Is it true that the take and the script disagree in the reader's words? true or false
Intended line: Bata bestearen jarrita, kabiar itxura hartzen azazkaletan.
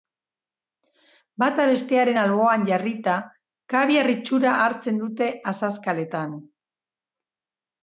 true